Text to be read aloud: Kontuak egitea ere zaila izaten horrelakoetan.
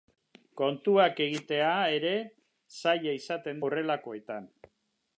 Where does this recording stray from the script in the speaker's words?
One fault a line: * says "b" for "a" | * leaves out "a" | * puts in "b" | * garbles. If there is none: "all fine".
all fine